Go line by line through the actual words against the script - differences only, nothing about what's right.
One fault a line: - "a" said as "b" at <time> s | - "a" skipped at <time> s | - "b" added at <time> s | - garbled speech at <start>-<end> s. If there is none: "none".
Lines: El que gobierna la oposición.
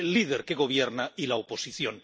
- "líder" added at 0.1 s
- "y" added at 1.2 s